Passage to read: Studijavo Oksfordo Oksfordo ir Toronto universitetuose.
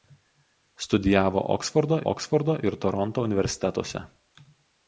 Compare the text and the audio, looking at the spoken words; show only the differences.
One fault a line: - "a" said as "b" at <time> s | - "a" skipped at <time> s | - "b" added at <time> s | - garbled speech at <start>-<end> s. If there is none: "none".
none